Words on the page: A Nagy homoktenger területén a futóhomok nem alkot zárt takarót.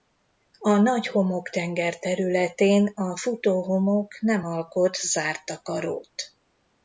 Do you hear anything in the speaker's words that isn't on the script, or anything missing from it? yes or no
no